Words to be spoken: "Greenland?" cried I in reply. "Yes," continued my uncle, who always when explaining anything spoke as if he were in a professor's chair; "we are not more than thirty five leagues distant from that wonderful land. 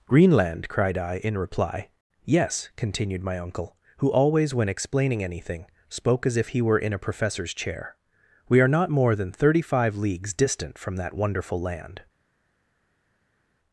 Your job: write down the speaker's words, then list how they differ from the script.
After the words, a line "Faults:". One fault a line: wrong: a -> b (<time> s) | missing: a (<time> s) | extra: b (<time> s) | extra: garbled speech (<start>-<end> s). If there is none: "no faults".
"Greenland?" cried I in reply. "Yes," continued my uncle, who always when explaining anything spoke as if he were in a professor's chair; "we are not more than thirty five leagues distant from that wonderful land.
Faults:
no faults